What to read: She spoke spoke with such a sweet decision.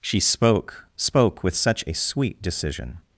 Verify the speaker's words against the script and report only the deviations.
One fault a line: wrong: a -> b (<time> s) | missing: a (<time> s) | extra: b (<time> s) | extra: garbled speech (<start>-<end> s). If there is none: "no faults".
no faults